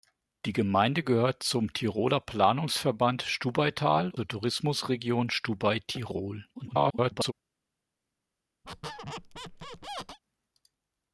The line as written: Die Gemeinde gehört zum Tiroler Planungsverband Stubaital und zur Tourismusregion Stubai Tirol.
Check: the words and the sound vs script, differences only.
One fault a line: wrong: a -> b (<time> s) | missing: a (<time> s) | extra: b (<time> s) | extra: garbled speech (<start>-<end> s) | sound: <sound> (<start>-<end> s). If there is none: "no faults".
missing: und (4.1 s)
extra: garbled speech (6.5-7.3 s)
sound: squeak (8.6-10.2 s)